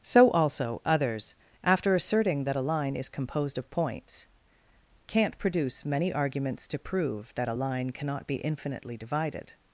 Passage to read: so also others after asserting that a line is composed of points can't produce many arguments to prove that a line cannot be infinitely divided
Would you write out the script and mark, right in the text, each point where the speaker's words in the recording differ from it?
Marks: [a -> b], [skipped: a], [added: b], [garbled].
so also others after asserting that a line is composed of points can't produce many arguments to prove that a line cannot be infinitely divided